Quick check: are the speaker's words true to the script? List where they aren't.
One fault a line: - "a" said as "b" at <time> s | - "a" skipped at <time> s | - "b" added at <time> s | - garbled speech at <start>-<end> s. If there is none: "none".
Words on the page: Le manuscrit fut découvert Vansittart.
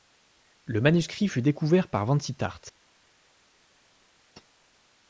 - "par" added at 1.9 s